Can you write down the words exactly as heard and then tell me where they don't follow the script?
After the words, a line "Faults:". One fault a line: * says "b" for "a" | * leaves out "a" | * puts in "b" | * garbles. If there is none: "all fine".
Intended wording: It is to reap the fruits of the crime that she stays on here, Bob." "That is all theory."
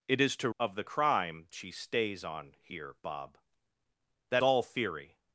It is to of the crime she stays on here, Bob." "That all theory."
Faults:
* leaves out "reap the fruits"
* leaves out "that"
* leaves out "is"